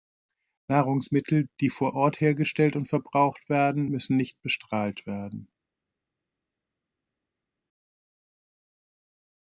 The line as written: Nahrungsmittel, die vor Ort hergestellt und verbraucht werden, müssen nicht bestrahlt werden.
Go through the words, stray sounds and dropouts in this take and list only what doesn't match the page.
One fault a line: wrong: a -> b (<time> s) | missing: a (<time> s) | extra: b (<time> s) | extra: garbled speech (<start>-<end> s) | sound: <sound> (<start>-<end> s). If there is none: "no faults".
no faults